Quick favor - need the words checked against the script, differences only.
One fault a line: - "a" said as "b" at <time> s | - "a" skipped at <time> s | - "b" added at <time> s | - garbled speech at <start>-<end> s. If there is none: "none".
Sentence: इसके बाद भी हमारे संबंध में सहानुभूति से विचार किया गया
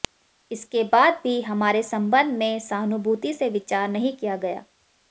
- "नहीं" added at 3.9 s